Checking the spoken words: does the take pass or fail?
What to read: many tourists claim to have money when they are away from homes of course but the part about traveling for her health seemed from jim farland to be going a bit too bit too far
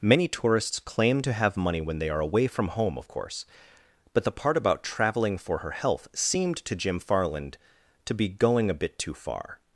fail